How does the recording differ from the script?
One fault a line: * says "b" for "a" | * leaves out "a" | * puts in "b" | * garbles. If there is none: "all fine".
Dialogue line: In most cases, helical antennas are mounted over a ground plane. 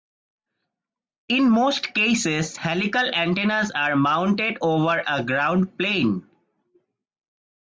all fine